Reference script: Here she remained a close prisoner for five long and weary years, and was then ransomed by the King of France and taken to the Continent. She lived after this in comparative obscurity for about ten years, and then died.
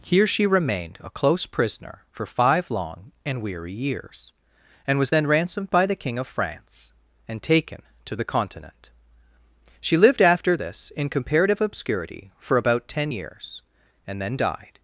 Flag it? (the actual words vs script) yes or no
no